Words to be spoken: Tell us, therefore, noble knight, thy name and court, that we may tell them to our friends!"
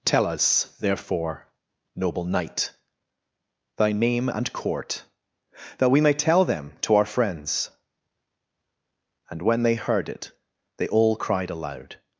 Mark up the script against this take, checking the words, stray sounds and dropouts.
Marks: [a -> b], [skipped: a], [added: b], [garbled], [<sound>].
Tell us, therefore, noble knight, thy name and court, that we may tell them to our friends!" [added: And when they heard it they all cried aloud]